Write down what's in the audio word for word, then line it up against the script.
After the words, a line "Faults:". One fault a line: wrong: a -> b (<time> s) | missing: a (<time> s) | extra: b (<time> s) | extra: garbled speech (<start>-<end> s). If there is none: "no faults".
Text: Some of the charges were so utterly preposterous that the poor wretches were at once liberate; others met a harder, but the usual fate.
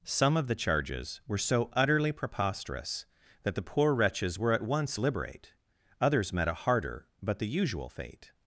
Some of the charges were so utterly preposterous that the poor wretches were at once liberate; others met a harder, but the usual fate.
Faults:
no faults